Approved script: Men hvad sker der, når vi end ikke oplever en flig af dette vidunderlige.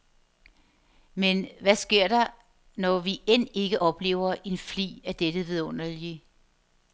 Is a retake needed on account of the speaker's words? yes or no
no